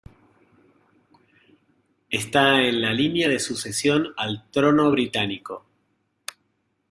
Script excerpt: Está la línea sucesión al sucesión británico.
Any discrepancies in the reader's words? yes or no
yes